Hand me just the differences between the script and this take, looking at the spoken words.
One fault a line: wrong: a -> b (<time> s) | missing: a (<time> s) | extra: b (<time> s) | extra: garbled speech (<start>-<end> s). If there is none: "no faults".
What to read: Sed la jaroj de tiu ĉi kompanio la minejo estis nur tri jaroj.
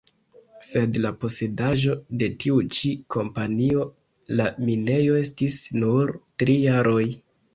wrong: jaroj -> posedaĵo (1.2 s)